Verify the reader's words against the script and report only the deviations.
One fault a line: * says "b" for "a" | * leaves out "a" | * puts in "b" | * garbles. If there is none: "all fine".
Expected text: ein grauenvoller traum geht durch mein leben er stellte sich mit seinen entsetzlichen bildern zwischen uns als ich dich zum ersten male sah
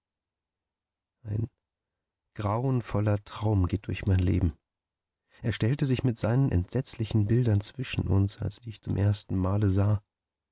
all fine